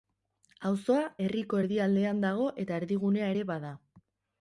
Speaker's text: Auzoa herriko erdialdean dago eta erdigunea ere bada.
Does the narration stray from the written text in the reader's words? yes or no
no